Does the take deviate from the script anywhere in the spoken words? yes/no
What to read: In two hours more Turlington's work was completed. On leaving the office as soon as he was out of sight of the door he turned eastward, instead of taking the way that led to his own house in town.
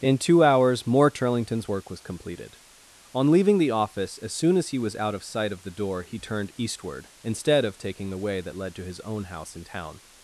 no